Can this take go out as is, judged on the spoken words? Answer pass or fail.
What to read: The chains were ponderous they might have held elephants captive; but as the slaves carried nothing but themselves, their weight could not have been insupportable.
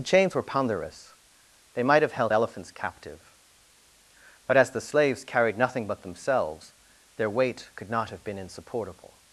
pass